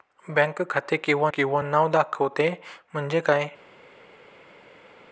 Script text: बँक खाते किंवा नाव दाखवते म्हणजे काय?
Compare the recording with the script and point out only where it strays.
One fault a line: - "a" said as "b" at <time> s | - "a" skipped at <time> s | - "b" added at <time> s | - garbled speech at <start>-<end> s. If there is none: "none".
- "किंवा" added at 1.3 s